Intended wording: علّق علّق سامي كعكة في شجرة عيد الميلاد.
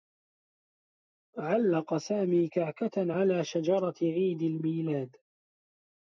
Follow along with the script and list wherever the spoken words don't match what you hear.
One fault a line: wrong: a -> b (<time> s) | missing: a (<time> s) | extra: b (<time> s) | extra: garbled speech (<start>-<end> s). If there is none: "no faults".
missing: علّق (2.0 s)
wrong: في -> على (3.1 s)